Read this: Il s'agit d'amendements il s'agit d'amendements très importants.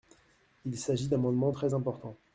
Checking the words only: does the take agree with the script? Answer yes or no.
no